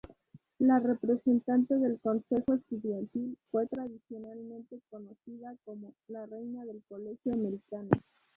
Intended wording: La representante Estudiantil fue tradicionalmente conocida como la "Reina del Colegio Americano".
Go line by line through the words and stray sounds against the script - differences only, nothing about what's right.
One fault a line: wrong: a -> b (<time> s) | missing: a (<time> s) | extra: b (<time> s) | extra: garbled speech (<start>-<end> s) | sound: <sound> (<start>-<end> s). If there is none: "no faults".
extra: del Consejo (1.8 s)